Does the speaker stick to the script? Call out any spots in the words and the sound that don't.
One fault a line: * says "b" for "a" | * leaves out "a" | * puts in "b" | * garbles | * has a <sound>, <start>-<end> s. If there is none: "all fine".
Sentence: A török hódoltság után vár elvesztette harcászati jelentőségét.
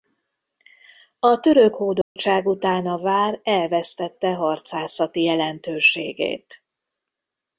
* has a dropout, 2.0-2.2 s
* puts in "a"